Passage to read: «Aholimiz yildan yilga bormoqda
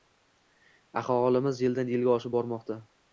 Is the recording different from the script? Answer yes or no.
yes